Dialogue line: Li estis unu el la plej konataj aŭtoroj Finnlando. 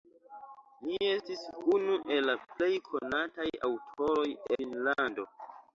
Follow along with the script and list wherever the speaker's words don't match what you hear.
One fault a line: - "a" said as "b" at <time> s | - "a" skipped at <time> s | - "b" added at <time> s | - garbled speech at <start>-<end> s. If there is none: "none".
none